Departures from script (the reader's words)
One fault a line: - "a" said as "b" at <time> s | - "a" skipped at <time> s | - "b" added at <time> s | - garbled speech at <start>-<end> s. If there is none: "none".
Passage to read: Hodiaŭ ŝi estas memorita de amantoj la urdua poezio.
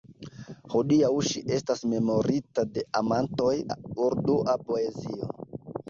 none